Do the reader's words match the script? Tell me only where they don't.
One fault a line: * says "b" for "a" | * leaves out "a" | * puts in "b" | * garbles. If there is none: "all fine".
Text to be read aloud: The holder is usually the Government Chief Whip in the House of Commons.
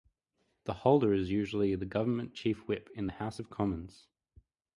all fine